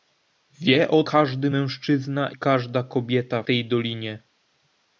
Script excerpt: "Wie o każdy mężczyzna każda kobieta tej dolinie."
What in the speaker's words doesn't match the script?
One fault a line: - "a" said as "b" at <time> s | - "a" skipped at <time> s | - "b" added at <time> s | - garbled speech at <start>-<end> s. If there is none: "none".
none